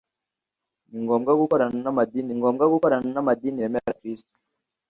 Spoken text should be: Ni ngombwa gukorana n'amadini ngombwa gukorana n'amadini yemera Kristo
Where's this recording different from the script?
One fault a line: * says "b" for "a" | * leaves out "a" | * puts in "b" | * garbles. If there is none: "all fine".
all fine